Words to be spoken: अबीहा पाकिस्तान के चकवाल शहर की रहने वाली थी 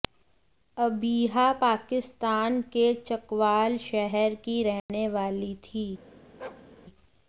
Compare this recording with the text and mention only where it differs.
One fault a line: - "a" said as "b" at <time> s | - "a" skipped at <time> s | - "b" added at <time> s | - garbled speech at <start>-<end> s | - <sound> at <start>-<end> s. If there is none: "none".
- dropout at 4.8-4.9 s
- bark at 6.4-6.7 s